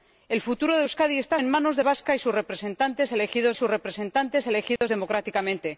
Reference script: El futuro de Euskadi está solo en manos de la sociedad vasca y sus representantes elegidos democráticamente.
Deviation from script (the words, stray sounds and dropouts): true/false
true